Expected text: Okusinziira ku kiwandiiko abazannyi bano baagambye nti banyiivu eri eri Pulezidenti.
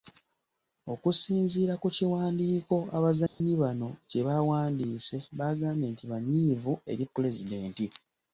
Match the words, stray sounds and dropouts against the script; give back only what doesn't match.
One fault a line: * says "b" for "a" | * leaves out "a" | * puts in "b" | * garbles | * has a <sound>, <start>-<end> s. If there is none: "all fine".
* has a dropout, 3.3-3.4 s
* puts in "kye baawandiise"
* leaves out "eri"